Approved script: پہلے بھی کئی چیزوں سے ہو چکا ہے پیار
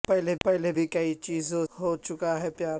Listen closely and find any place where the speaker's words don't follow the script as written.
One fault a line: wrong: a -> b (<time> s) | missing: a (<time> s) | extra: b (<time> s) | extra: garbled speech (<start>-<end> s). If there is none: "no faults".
extra: پہلے (0.4 s)
missing: سے (1.6 s)